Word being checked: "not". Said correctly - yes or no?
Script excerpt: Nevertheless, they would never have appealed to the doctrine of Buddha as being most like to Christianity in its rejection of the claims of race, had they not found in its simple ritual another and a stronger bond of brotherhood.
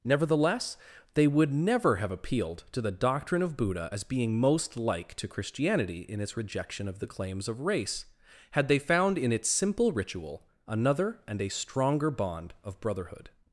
no